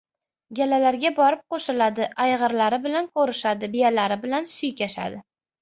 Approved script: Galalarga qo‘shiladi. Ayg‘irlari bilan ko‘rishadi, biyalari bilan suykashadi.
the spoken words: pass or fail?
fail